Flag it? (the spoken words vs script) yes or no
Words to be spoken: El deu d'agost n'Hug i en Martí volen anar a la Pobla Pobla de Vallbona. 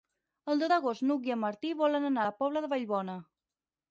yes